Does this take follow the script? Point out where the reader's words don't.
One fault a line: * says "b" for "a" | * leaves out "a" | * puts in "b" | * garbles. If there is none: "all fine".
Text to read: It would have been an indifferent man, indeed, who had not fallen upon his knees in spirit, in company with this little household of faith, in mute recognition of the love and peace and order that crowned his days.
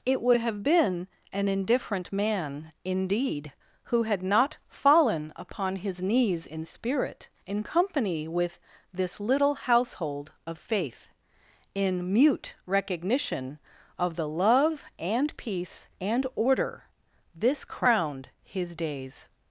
* says "this" for "that"